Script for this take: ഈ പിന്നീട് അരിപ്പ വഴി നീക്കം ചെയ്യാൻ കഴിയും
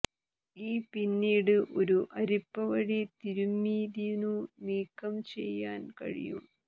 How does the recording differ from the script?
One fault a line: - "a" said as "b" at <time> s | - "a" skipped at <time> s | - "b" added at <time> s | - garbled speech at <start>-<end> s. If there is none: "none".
- "ഒരു" added at 1.8 s
- "തിരുമ്മിതിന്നു" added at 3.2 s